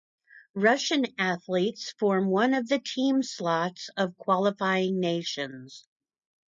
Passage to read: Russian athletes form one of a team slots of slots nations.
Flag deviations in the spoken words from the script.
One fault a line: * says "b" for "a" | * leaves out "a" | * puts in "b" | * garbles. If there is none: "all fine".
* says "the" for "a"
* says "qualifying" for "slots"